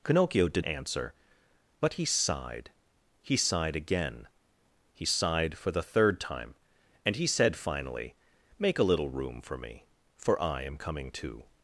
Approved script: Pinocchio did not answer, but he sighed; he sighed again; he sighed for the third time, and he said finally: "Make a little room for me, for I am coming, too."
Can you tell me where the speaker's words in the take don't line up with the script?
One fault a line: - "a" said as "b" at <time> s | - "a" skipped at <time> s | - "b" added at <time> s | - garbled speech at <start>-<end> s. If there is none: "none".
- "not" skipped at 0.7 s